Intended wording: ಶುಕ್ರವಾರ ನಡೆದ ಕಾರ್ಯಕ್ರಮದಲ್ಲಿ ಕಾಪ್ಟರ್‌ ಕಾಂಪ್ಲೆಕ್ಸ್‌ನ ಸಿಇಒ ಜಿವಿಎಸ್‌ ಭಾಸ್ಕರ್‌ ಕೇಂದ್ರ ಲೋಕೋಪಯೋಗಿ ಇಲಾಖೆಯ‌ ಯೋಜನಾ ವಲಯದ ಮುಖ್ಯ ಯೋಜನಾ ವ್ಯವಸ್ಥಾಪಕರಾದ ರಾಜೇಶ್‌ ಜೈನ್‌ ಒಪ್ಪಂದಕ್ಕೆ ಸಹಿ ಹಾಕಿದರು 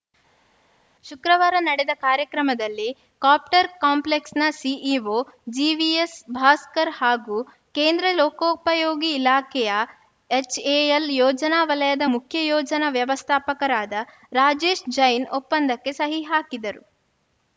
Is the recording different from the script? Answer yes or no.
yes